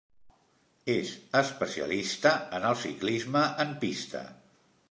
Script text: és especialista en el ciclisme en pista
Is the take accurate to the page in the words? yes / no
yes